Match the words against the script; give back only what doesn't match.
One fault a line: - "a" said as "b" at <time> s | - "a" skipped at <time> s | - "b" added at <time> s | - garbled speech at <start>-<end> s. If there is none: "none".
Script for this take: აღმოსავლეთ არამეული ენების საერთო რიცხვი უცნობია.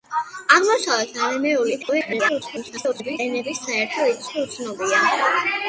- garbled speech at 1.8-3.2 s